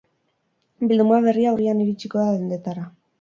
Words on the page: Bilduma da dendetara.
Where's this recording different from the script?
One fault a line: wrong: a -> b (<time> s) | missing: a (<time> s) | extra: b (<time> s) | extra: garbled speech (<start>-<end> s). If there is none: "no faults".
extra: berria urrian iritsiko (1.3 s)